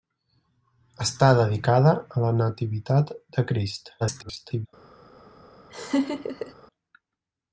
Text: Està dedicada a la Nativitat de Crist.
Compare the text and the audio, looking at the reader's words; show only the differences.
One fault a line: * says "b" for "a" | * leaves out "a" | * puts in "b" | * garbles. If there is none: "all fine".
* garbles